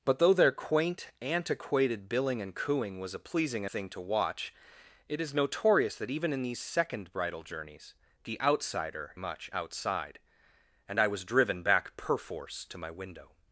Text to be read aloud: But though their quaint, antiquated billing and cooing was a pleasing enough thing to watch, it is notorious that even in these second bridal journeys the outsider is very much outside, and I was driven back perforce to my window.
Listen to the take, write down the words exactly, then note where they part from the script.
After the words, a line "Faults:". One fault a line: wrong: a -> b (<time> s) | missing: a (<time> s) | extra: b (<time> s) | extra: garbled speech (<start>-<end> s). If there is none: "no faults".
But though their quaint, antiquated billing and cooing was a pleasing thing to watch, it is notorious that even in these second bridal journeys the outsider much outside, and I was driven back perforce to my window.
Faults:
missing: enough (3.6 s)
missing: is very (9.1 s)